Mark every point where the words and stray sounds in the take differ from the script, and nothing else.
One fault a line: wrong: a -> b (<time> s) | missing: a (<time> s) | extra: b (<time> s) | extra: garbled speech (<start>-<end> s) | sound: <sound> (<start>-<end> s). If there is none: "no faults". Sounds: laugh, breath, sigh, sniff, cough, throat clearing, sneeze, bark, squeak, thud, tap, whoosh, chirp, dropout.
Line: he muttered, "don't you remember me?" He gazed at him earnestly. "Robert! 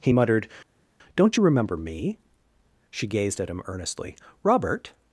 wrong: He -> She (2.9 s)